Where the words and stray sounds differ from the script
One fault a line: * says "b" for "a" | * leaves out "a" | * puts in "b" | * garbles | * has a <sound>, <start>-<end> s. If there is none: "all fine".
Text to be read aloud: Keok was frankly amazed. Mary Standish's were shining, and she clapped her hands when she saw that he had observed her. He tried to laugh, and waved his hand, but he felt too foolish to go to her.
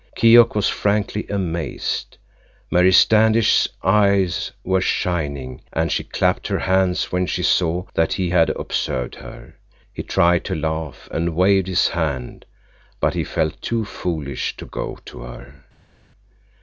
* puts in "eyes"